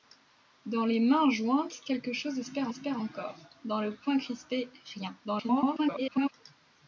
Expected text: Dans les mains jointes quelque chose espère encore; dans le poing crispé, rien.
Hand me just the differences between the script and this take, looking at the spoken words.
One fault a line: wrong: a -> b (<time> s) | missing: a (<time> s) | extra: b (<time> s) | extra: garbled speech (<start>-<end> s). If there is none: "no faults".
extra: espère (2.7 s)
extra: garbled speech (5.2-6.3 s)